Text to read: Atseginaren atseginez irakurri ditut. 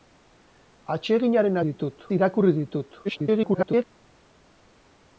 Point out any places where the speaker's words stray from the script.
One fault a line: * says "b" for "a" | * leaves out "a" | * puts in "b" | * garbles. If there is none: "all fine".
* says "ditut" for "atseginez"
* garbles